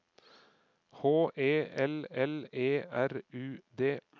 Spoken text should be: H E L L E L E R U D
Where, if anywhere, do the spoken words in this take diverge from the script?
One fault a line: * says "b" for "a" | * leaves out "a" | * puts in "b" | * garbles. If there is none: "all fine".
* leaves out "L E"